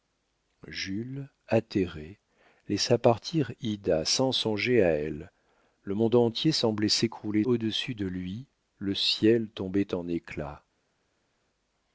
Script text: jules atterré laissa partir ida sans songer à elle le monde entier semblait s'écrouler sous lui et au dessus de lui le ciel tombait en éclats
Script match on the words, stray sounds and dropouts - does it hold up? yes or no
no